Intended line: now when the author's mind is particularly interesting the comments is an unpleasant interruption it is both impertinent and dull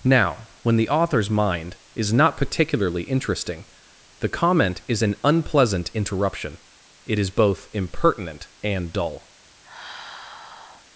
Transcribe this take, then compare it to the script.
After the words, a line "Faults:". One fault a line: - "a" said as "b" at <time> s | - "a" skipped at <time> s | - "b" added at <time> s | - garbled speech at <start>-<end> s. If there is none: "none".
now when the author's mind is not particularly interesting the comment is an unpleasant interruption it is both impertinent and dull
Faults:
- "not" added at 2.1 s
- "comments" said as "comment" at 4.3 s